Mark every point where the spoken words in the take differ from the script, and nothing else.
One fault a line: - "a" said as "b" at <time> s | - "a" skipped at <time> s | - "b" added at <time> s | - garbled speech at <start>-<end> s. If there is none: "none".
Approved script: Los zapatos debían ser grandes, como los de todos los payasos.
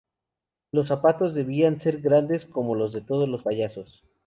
none